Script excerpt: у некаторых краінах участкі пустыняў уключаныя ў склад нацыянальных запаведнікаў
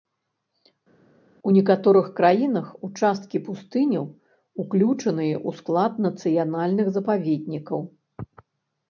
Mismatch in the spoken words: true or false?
false